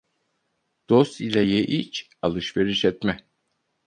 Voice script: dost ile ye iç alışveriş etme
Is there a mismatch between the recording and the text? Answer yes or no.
no